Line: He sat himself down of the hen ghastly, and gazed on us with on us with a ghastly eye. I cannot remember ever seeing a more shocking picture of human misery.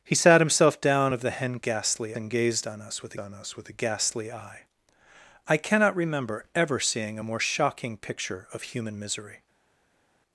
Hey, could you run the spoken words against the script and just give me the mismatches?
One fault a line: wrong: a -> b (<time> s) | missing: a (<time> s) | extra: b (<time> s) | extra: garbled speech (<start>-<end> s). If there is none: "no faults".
no faults